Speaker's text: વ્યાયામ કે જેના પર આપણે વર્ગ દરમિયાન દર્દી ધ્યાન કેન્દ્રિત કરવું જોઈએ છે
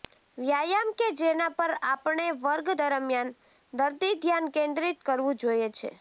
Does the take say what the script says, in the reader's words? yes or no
yes